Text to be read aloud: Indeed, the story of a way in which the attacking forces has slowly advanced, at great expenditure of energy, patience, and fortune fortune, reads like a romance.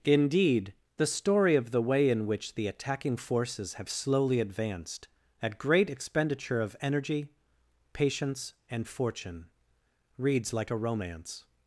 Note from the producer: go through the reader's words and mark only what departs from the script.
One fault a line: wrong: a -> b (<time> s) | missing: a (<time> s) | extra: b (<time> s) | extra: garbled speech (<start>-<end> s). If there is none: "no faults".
wrong: a -> the (1.7 s)
wrong: has -> have (3.8 s)
missing: fortune (9.5 s)